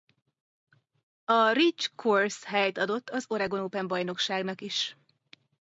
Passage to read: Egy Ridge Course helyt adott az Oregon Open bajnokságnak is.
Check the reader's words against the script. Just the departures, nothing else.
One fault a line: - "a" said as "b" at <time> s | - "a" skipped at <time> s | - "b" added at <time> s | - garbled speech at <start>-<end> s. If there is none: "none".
- "Egy" said as "A" at 1.2 s